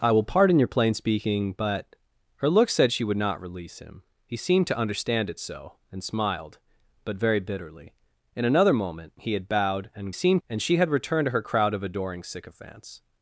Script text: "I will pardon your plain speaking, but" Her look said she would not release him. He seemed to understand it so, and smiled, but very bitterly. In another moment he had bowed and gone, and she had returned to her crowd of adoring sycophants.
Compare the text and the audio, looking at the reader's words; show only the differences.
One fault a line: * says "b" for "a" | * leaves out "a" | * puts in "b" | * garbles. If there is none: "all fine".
* says "seemed" for "gone"